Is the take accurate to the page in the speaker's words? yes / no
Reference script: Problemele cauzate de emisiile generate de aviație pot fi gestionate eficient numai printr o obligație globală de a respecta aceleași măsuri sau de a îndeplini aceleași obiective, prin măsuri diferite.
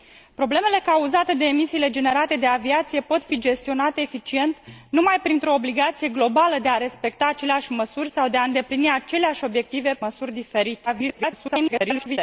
no